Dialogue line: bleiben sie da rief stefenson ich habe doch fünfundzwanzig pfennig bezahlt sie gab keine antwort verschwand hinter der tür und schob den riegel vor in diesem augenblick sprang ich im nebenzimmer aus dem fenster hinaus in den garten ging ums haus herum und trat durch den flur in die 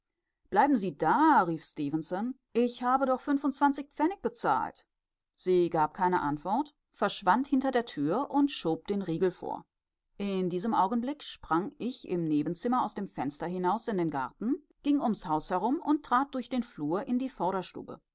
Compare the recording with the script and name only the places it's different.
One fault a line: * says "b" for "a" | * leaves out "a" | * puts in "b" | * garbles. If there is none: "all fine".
all fine